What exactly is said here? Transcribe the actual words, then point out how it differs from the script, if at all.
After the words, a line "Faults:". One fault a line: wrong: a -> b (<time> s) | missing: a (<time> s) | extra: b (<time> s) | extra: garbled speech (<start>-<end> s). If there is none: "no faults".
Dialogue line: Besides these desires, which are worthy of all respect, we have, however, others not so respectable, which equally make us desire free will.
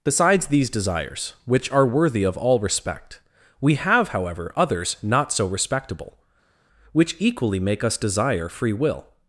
Besides these desires, which are worthy of all respect, we have, however, others not so respectable, which equally make us desire free will.
Faults:
no faults